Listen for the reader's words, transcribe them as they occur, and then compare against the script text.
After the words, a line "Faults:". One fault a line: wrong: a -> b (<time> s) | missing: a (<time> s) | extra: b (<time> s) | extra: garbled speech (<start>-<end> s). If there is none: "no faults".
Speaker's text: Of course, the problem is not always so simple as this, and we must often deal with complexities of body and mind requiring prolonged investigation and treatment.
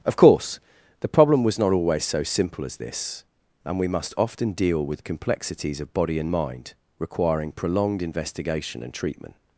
Of course, the problem was not always so simple as this, and we must often deal with complexities of body and mind requiring prolonged investigation and treatment.
Faults:
wrong: is -> was (1.4 s)